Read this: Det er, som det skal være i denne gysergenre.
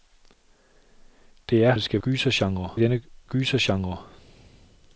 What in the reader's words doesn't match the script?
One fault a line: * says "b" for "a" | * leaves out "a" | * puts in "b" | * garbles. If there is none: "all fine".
* leaves out "som"
* says "gysergenre" for "være"